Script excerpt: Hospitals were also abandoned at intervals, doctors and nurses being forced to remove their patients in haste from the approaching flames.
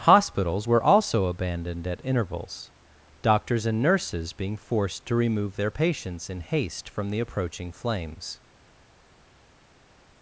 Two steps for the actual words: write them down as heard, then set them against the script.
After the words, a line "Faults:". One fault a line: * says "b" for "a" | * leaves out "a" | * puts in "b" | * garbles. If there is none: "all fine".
Hospitals were also abandoned at intervals, doctors and nurses being forced to remove their patients in haste from the approaching flames.
Faults:
all fine